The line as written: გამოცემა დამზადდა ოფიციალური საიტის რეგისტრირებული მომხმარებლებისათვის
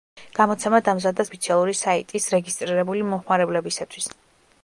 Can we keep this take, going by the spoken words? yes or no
yes